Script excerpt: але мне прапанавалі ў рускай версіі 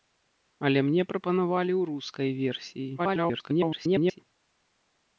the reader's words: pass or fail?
fail